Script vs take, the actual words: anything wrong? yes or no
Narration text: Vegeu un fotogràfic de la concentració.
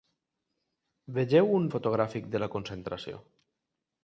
no